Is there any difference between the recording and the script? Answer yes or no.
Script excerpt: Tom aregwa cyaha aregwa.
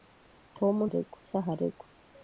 no